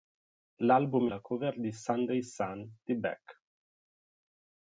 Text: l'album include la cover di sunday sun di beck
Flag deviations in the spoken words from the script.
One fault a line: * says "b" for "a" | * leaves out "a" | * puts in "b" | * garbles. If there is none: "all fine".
* leaves out "include"